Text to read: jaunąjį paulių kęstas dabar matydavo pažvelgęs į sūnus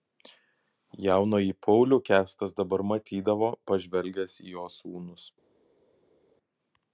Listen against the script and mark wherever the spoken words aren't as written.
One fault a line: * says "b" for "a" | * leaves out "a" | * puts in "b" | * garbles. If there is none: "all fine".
* puts in "jo"